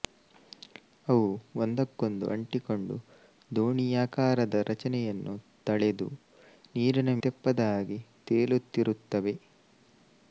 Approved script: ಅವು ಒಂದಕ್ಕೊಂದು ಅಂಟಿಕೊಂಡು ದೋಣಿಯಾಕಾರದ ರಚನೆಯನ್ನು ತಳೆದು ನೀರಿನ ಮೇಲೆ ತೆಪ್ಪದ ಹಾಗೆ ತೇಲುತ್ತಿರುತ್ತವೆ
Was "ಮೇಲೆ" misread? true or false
true